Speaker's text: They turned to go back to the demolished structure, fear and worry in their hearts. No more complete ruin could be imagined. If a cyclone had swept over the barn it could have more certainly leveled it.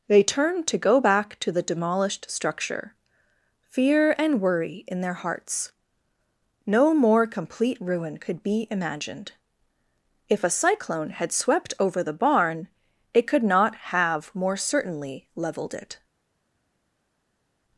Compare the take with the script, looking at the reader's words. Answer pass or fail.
fail